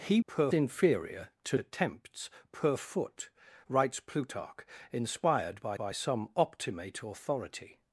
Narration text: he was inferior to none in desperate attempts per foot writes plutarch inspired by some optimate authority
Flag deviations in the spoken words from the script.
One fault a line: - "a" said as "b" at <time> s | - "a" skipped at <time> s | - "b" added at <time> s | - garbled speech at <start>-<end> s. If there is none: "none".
- "was" said as "per" at 0.2 s
- "none in desperate" skipped at 1.6 s
- "by" added at 5.7 s